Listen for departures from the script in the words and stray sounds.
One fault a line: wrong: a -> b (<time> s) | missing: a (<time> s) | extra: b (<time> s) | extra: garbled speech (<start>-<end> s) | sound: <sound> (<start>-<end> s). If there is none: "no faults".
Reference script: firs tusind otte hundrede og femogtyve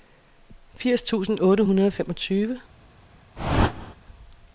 sound: whoosh (3.4-3.9 s)